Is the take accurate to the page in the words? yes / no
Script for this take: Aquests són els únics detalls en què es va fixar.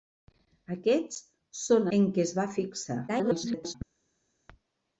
no